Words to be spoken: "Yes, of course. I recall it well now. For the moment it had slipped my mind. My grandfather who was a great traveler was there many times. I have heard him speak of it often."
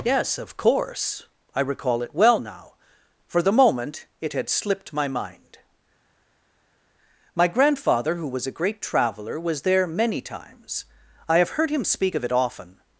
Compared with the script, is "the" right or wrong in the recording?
right